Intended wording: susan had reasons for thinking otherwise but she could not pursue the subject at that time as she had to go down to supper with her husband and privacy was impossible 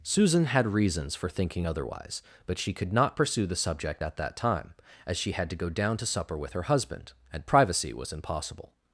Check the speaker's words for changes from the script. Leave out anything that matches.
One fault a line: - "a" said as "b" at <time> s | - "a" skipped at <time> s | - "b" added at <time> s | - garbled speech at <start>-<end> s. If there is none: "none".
none